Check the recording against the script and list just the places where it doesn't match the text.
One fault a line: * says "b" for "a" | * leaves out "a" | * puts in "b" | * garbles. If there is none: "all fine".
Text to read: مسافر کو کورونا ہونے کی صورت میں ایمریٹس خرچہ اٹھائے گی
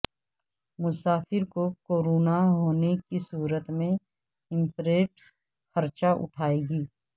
all fine